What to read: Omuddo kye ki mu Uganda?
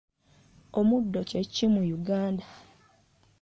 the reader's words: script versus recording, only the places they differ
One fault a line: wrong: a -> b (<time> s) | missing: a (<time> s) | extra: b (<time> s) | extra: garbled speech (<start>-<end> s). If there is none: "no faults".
no faults